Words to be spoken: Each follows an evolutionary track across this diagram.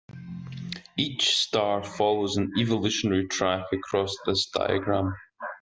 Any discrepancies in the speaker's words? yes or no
yes